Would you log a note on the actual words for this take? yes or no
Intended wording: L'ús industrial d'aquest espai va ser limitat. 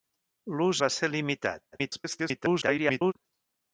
yes